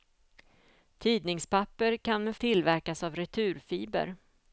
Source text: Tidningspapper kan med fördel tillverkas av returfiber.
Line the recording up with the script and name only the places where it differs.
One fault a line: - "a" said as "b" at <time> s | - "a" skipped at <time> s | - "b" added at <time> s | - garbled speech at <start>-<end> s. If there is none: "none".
- "fördel" skipped at 2.4 s